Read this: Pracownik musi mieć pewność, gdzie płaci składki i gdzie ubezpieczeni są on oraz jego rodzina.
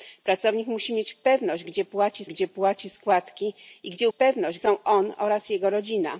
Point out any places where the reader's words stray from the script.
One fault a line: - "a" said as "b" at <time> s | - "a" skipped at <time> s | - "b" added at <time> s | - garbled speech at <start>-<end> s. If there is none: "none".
- "gdzie płaci" added at 2.3 s
- "ubezpieczeni" said as "pewność" at 4.1 s